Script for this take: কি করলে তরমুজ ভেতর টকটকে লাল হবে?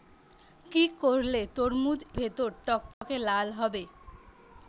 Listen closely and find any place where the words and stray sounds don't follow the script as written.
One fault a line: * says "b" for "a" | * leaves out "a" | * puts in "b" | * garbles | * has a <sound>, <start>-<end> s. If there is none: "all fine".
* has a dropout, 2.9-3.0 s